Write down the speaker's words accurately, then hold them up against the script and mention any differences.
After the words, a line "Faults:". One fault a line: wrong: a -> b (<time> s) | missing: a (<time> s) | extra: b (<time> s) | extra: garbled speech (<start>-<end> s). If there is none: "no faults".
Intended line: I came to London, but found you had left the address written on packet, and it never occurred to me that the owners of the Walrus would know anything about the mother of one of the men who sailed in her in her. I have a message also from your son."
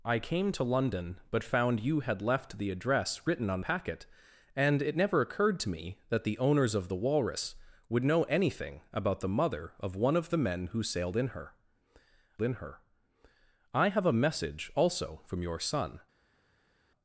I came to London, but found you had left the address written on packet, and it never occurred to me that the owners of the Walrus would know anything about the mother of one of the men who sailed in her in her. I have a message also from your son."
Faults:
no faults